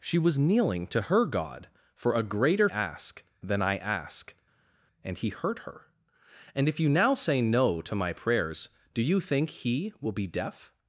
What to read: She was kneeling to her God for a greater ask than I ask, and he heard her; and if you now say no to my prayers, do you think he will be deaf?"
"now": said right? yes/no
yes